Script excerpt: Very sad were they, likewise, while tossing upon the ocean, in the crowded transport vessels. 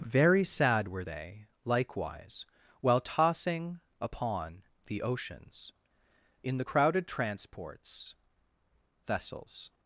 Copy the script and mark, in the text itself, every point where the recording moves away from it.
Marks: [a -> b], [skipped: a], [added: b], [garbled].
Very sad were they, likewise, while tossing upon the [ocean, -> oceans] in the crowded [transport -> transports] vessels.